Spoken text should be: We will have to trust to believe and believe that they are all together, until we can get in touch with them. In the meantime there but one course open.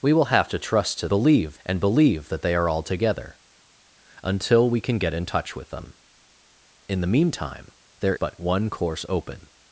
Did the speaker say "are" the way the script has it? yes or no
yes